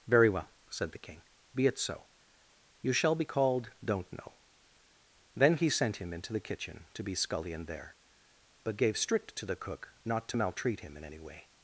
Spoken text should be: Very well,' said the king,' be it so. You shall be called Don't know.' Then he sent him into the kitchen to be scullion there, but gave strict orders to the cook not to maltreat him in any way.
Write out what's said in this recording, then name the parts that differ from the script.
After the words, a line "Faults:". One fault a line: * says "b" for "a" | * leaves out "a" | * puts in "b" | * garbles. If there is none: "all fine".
Very well,' said the king,' be it so. You shall be called Don't know.' Then he sent him into the kitchen to be scullion there, but gave strict to the cook not to maltreat him in any way.
Faults:
* leaves out "orders"